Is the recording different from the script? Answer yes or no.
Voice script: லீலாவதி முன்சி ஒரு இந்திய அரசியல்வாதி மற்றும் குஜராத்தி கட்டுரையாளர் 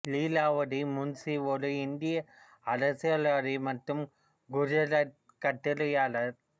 no